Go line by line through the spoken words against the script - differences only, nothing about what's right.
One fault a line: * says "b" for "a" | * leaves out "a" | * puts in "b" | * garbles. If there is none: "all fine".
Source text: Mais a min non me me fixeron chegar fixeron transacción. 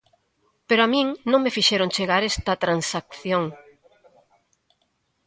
* says "Pero" for "Mais"
* leaves out "me"
* says "esta" for "fixeron"